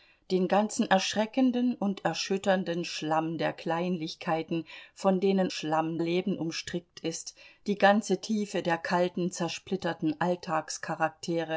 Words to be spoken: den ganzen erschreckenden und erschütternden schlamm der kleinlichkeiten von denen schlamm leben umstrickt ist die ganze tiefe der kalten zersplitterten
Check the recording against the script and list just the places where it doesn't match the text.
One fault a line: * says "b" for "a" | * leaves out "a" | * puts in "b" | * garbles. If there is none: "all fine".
all fine